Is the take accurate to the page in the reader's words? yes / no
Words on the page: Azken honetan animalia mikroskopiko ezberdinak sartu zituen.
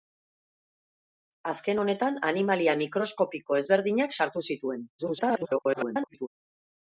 no